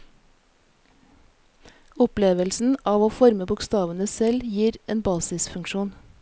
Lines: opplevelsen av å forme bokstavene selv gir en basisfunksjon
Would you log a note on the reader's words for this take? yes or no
no